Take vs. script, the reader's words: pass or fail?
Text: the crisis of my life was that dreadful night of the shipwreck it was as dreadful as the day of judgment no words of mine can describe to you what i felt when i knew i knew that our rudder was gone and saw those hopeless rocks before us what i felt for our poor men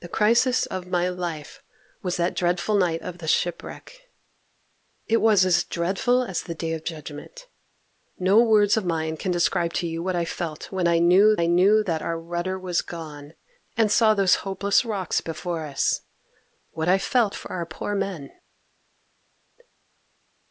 pass